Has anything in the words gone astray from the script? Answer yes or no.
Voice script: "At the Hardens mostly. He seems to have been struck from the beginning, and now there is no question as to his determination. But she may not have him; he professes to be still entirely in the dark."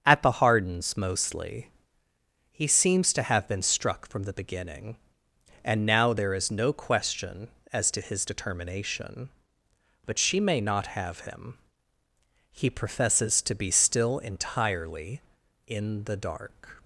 no